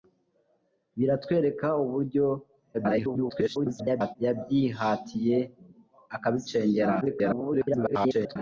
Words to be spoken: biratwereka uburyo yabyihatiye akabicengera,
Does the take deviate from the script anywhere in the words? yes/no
yes